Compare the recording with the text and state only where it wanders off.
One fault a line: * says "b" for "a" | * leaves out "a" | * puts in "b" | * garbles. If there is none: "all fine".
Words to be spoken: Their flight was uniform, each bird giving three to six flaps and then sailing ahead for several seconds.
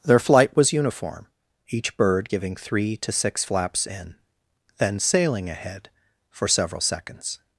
* says "in" for "and"